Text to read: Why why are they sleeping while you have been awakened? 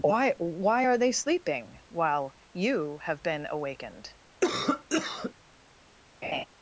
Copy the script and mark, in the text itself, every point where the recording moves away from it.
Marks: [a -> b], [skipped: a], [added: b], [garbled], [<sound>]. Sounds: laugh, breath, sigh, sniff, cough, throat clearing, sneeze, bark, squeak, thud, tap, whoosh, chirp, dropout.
Why why are they sleeping while you have been awakened? [cough] [laugh]